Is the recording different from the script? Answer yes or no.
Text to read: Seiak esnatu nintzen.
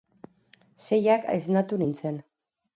no